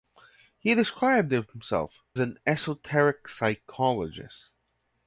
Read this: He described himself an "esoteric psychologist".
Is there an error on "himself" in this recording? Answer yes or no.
no